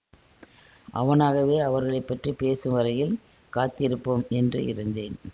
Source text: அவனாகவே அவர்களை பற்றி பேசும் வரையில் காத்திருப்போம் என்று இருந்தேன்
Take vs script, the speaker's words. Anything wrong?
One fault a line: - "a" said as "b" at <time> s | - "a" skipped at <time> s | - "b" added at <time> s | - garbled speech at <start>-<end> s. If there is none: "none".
none